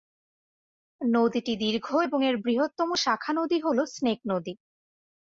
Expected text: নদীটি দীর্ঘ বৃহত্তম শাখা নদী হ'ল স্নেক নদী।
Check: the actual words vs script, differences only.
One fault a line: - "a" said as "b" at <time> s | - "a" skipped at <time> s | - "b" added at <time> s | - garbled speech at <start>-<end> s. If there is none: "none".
- "এবং এর" added at 2.1 s